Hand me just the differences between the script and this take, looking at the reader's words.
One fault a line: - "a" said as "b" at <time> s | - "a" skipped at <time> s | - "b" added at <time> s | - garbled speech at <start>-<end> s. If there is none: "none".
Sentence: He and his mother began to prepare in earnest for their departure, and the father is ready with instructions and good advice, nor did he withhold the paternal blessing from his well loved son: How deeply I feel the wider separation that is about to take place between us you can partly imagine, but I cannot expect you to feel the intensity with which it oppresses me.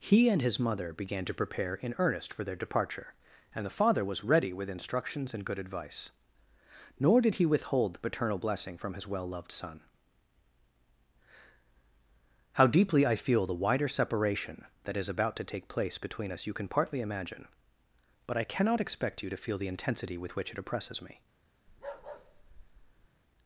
- "is" said as "was" at 4.0 s